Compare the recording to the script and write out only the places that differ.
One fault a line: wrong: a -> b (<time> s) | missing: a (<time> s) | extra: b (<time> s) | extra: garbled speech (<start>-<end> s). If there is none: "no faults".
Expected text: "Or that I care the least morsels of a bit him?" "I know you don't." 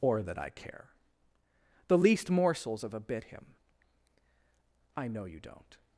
no faults